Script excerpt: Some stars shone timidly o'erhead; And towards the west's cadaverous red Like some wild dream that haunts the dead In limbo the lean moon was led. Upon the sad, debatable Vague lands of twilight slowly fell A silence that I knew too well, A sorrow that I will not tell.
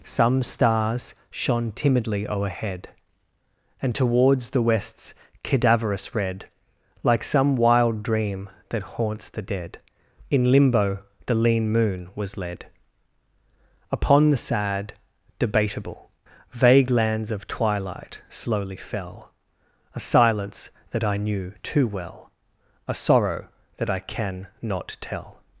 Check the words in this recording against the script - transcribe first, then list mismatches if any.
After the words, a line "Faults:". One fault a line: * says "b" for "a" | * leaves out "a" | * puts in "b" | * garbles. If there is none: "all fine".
Some stars shone timidly o'erhead; And towards the west's cadaverous red Like some wild dream that haunts the dead In limbo the lean moon was led. Upon the sad, debatable Vague lands of twilight slowly fell A silence that I knew too well, A sorrow that I can not tell.
Faults:
* says "can" for "will"